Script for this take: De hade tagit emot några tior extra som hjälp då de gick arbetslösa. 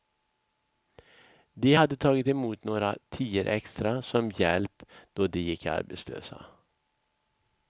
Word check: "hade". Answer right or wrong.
right